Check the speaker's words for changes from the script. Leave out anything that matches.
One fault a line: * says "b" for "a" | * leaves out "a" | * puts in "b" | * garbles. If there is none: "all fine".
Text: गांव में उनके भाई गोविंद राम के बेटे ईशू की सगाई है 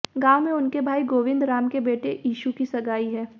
all fine